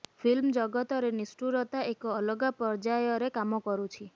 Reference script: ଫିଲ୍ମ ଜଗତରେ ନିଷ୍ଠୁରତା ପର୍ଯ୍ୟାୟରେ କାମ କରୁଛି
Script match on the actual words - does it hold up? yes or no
no